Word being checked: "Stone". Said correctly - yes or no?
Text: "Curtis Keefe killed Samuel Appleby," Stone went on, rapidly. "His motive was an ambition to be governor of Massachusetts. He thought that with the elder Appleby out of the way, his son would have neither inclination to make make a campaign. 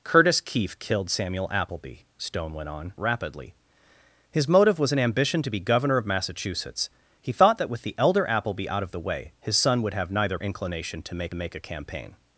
yes